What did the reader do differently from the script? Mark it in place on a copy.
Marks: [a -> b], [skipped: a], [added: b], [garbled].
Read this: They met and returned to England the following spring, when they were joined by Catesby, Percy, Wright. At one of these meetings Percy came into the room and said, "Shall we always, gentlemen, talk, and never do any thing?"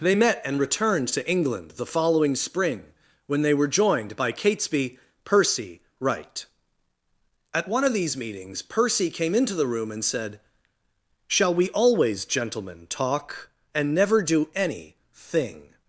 They met and returned to England the following spring, when they were joined by Catesby, Percy, Wright. At one of these meetings Percy came into the room and said, "Shall we always, gentlemen, talk, and never do any thing?"